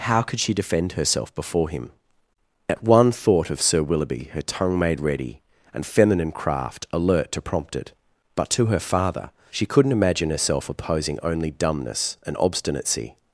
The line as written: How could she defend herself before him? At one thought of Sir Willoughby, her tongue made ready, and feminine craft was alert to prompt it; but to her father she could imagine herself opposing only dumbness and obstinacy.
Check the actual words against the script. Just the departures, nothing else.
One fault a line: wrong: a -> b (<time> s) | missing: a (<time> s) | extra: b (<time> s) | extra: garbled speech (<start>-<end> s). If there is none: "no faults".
missing: was (6.9 s)
wrong: could -> couldn't (9.7 s)